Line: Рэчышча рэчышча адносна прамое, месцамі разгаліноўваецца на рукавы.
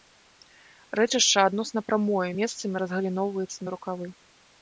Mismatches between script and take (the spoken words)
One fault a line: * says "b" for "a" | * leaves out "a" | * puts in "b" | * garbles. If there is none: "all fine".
* leaves out "рэчышча"